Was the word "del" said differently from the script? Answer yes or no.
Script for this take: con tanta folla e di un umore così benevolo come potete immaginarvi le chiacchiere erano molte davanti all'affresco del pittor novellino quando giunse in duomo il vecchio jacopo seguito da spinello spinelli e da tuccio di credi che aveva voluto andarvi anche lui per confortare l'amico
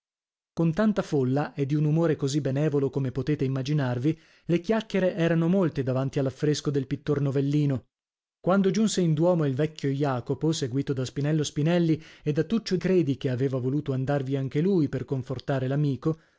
no